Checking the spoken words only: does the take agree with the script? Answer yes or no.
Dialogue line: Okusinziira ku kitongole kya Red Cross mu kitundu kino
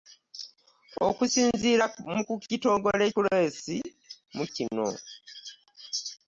no